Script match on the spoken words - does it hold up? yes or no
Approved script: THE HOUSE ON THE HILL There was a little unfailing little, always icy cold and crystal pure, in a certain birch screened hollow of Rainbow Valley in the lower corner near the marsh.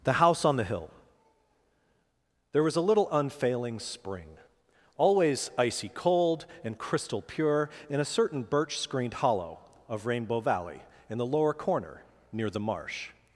no